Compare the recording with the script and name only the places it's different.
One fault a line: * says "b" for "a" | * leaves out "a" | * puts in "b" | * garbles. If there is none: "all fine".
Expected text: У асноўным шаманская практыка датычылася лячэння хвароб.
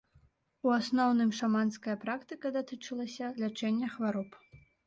all fine